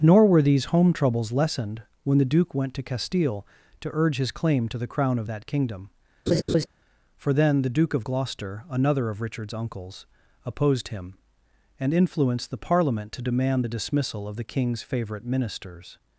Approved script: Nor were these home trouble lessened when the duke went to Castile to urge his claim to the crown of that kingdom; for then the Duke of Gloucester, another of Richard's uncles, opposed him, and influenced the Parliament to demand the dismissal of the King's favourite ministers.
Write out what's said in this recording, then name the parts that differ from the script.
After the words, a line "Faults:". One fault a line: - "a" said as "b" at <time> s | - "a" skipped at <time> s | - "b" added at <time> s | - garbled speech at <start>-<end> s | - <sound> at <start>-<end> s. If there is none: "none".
Nor were these home troubles lessened when the duke went to Castile to urge his claim to the crown of that kingdom; for then the Duke of Gloucester, another of Richard's uncles, opposed him, and influenced the Parliament to demand the dismissal of the King's favourite ministers.
Faults:
- "trouble" said as "troubles" at 0.9 s
- laugh at 6.3-6.7 s